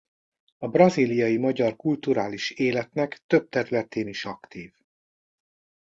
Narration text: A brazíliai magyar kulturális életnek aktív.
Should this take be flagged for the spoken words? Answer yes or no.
yes